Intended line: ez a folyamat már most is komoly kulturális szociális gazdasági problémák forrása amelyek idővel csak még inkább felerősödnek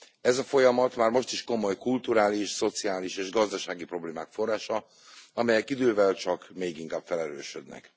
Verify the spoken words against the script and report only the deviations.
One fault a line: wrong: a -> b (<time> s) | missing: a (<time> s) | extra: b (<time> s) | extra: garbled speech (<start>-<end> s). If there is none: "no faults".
extra: és (3.2 s)